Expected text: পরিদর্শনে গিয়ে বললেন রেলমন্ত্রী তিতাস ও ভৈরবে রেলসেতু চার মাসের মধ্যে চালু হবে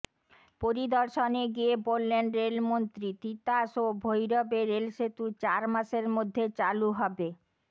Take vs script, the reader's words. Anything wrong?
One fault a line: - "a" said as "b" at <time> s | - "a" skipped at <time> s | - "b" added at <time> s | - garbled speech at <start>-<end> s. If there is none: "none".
none